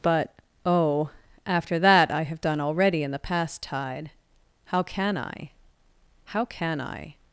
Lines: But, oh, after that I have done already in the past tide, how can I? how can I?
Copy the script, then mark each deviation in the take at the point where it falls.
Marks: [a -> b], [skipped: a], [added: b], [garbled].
But, oh, after that I have done already in the past tide, how can I? how can I?